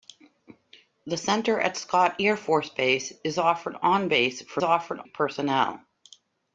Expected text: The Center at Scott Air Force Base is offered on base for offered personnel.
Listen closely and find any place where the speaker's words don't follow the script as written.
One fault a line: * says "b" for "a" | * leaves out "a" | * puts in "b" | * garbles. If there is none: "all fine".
all fine